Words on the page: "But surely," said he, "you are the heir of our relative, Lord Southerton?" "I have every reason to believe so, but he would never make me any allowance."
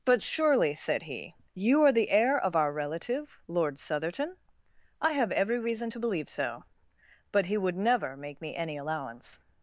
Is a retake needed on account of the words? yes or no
no